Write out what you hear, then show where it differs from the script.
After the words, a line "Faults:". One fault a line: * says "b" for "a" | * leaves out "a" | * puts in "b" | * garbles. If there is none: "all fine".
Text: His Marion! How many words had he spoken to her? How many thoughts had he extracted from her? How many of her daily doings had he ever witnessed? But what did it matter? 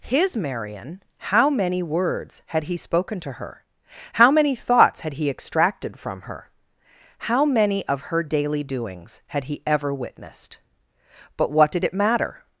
His Marion! How many words had he spoken to her? How many thoughts had he extracted from her? How many of her daily doings had he ever witnessed? But what did it matter?
Faults:
all fine